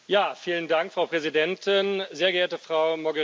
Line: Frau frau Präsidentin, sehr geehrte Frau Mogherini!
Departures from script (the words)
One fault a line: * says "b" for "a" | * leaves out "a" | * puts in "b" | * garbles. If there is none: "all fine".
* leaves out "frau"